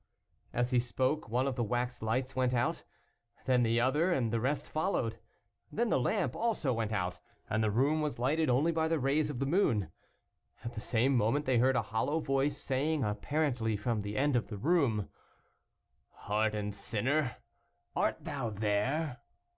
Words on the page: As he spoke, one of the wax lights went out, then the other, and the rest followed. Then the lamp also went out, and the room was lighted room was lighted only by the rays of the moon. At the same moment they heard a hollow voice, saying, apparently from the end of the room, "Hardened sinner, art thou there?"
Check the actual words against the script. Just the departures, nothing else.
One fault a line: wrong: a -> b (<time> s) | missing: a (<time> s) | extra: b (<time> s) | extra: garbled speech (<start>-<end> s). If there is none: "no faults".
missing: room was lighted (8.5 s)